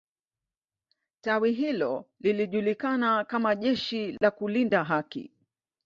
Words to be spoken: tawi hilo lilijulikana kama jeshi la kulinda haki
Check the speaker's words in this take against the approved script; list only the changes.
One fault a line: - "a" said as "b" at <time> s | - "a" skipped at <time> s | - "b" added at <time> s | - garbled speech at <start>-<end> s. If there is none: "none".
none